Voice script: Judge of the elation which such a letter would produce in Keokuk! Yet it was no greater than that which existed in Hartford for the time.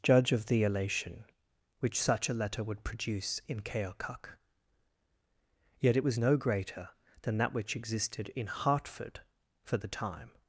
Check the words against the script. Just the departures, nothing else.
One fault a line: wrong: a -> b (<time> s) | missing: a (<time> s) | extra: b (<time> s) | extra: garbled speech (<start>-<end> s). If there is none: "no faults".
no faults